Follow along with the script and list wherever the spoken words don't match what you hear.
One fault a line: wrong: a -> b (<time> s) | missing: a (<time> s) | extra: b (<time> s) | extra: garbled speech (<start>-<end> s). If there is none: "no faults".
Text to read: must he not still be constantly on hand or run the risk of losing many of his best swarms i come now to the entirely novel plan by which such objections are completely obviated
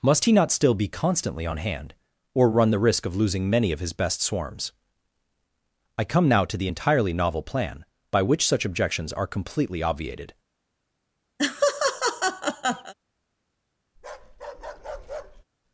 no faults